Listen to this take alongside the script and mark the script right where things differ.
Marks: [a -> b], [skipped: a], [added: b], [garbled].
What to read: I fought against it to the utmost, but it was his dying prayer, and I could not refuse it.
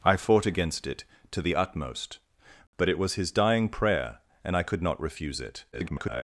I fought against it to the utmost, but it was his dying prayer, and I could not refuse it. [garbled]